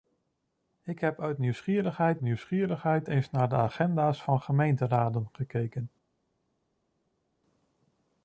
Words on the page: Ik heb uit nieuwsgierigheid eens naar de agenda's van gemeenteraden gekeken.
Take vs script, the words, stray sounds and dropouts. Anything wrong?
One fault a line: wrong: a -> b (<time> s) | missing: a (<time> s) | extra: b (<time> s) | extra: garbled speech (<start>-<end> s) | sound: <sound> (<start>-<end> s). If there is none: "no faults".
extra: nieuwsgierigheid (2.2 s)